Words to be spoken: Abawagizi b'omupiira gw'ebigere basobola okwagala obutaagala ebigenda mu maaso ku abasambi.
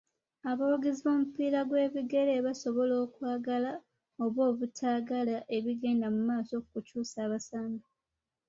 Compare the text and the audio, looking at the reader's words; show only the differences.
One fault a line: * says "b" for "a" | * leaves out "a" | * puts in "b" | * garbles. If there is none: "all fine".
* puts in "oba"
* puts in "kukyusa"